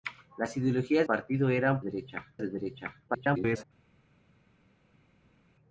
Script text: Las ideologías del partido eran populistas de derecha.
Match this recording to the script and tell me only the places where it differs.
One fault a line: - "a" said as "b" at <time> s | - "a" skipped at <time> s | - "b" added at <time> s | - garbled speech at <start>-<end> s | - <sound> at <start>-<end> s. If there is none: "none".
- "del" skipped at 1.1 s
- "populistas" said as "derecha" at 1.8 s
- garbled speech at 3.1-3.6 s